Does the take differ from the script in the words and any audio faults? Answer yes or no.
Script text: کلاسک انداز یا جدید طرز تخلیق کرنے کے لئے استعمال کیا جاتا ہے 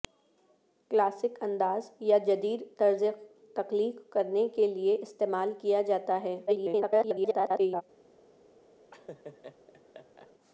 yes